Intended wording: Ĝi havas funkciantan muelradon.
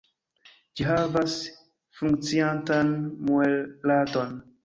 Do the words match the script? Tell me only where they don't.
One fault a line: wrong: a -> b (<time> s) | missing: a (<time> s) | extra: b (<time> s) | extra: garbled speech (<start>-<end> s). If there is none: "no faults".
no faults